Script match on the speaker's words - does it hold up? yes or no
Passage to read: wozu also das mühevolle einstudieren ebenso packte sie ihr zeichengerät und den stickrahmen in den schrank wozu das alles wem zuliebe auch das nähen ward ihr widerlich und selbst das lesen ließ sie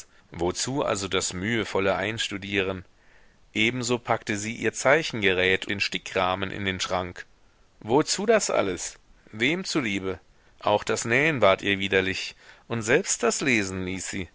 no